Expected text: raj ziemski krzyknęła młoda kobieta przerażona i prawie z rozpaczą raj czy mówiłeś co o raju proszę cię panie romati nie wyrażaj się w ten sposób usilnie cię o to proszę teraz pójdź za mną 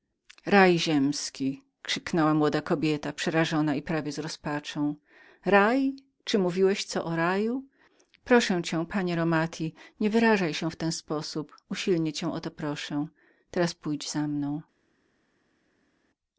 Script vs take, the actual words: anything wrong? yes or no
no